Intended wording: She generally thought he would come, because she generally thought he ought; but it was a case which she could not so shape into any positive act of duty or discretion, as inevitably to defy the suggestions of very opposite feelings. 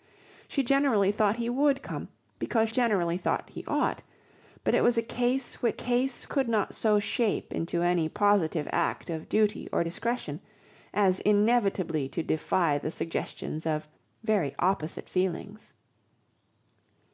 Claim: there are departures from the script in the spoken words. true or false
true